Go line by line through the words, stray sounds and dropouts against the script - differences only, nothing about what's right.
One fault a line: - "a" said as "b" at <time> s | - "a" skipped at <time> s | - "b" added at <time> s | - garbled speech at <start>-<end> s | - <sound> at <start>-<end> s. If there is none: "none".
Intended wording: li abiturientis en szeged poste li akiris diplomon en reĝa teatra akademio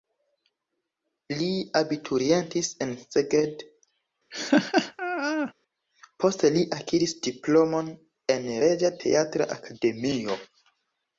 - laugh at 4.3-5.5 s